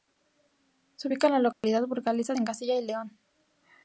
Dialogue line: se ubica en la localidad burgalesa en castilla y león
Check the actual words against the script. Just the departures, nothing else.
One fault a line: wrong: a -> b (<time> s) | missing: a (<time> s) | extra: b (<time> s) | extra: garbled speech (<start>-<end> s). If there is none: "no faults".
no faults